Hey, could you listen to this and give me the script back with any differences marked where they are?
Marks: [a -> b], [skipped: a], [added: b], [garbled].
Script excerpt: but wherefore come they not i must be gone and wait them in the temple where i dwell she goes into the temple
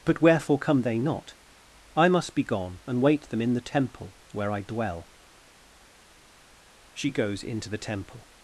but wherefore come they not i must be gone and wait them in the temple where i dwell she goes into the temple